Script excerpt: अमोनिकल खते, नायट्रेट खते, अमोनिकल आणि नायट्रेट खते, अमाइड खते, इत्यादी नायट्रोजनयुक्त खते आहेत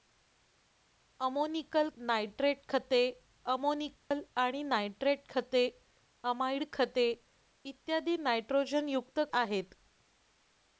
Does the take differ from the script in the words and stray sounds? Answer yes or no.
yes